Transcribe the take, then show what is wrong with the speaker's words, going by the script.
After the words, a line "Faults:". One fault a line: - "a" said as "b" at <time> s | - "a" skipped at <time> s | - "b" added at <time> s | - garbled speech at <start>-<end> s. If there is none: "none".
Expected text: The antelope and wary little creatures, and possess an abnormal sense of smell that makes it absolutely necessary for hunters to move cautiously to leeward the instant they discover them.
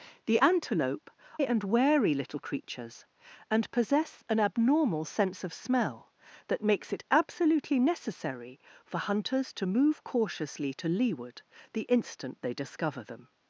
The antelope and wary little creatures, and possess an abnormal sense of smell that makes it absolutely necessary for hunters to move cautiously to leeward the instant they discover them.
Faults:
none